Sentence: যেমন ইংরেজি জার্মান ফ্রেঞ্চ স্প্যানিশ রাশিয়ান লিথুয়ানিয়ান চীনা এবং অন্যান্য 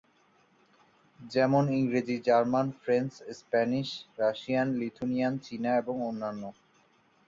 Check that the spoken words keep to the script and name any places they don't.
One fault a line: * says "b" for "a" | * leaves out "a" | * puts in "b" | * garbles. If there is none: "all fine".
all fine